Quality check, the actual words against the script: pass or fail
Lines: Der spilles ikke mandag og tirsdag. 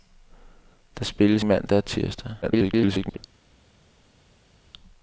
fail